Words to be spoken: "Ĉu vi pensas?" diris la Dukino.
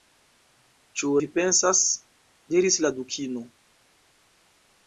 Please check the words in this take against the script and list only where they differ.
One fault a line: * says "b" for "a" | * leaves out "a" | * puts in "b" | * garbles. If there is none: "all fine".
all fine